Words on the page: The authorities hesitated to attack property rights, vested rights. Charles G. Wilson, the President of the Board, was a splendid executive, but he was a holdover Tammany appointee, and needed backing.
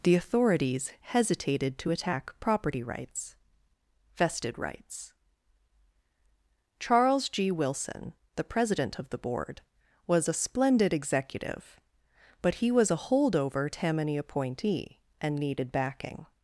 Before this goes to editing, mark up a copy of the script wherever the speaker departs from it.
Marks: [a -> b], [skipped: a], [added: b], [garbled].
The authorities hesitated to attack property rights, vested rights. Charles G. Wilson, the President of the Board, was a splendid executive, but he was a holdover Tammany appointee, and needed backing.